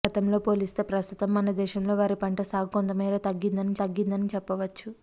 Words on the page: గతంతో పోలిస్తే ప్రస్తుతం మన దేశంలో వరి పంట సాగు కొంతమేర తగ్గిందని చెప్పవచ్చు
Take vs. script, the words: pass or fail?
fail